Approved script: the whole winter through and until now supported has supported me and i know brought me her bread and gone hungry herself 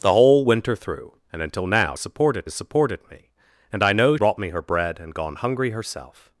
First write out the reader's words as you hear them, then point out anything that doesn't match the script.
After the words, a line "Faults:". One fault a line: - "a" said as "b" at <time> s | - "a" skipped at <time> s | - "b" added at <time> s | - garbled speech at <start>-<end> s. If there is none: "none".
the whole winter through and until now supported has supported me and i know brought me her bread and gone hungry herself
Faults:
none